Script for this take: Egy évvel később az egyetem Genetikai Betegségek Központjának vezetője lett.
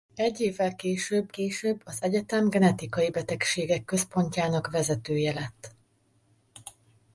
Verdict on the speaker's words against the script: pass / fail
fail